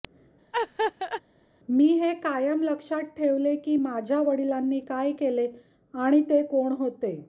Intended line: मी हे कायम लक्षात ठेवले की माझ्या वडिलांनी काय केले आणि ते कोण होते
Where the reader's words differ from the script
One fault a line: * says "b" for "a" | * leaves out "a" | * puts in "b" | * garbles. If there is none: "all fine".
all fine